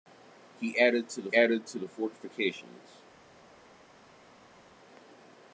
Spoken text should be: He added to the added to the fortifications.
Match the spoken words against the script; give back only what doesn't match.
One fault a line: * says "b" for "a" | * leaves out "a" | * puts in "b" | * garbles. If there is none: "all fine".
all fine